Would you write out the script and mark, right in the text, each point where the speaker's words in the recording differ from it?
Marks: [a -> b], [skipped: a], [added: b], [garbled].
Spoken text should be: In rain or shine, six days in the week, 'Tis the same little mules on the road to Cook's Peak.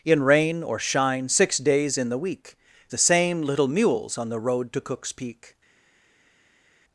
In rain or shine, six days in the week, [skipped: 'Tis] the same little mules on the road to Cook's Peak.